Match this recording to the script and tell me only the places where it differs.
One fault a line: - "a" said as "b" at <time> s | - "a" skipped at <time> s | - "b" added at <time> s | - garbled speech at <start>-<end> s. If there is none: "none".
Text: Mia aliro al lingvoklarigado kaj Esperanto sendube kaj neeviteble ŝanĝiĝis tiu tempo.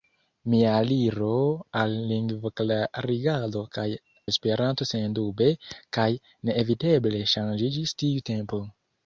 none